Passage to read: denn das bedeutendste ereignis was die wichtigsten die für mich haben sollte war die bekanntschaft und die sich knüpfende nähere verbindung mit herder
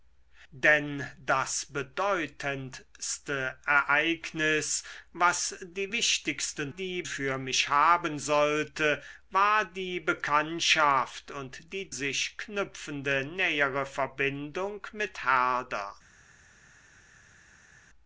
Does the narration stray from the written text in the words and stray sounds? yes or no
no